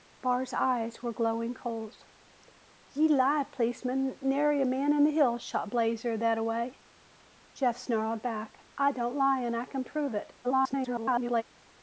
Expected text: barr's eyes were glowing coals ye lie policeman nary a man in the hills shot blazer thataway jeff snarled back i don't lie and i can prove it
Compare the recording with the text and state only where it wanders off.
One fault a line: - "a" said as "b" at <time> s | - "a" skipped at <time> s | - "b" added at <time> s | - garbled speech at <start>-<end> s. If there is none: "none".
- garbled speech at 10.4-11.4 s